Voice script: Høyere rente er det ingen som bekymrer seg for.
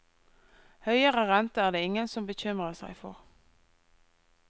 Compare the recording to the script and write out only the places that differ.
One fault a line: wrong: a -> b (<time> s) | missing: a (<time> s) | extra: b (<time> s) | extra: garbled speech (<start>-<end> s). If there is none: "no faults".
no faults